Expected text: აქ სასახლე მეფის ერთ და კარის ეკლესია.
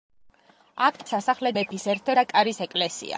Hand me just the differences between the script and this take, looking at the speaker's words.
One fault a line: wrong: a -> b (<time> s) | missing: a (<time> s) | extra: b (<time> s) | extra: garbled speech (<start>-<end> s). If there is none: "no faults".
no faults